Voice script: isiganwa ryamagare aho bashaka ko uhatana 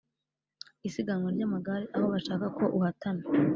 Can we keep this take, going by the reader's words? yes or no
yes